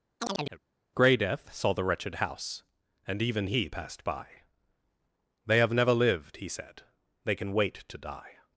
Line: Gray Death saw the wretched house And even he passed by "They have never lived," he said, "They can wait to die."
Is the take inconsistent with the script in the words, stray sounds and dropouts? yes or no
yes